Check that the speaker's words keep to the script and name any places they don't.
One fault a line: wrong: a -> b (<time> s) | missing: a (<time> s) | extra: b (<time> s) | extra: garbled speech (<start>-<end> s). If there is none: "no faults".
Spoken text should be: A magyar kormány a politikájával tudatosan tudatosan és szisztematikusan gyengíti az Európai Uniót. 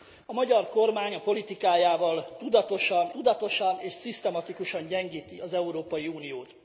no faults